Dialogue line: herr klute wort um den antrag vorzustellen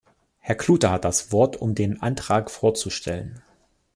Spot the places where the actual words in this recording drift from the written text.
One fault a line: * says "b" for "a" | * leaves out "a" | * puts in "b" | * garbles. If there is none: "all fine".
* puts in "hat das"